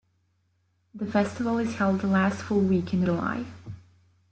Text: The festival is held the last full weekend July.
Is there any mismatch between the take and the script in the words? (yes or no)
no